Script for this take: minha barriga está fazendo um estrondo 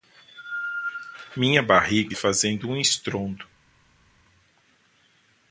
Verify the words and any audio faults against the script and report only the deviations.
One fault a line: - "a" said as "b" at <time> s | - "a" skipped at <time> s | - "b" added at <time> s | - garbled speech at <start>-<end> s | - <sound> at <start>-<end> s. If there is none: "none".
- "está" skipped at 2.1 s